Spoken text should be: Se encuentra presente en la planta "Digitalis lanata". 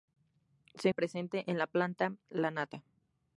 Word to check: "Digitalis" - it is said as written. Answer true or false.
false